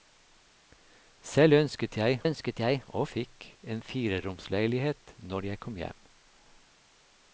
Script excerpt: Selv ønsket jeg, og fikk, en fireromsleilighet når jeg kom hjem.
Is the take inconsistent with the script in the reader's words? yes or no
yes